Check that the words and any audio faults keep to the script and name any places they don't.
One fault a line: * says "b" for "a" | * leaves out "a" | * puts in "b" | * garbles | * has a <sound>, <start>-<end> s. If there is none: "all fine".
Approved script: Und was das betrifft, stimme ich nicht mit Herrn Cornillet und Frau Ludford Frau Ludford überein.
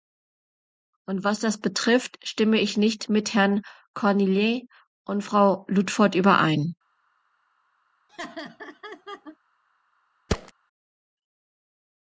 * leaves out "Frau Ludford"
* has a laugh, 8.1-9.4 s
* has a thud, 10.3-10.5 s